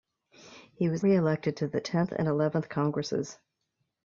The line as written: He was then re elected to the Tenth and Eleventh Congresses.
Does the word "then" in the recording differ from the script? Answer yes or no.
yes